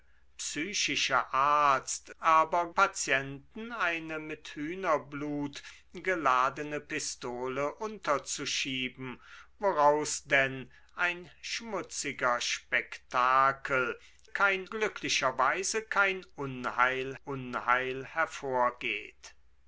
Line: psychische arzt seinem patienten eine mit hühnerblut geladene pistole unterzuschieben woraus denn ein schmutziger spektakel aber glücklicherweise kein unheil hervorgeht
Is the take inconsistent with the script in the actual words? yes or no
yes